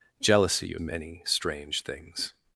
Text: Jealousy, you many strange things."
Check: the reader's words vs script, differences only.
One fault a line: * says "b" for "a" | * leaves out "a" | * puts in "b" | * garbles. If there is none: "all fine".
all fine